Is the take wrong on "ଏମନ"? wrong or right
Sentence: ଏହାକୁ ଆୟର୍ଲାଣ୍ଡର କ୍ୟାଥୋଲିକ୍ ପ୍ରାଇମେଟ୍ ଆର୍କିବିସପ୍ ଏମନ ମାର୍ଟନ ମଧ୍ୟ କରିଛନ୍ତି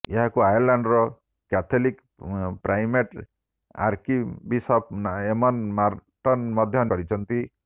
right